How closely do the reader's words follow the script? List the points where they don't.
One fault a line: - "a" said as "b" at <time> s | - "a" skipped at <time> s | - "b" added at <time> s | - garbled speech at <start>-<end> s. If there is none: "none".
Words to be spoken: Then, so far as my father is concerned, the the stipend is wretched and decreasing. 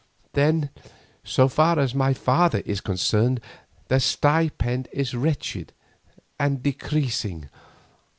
- "the" skipped at 4.0 s